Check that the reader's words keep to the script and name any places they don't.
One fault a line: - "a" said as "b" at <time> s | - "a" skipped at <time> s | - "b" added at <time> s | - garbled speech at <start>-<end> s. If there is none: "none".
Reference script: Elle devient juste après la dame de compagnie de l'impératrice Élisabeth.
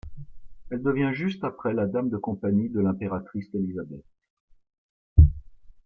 none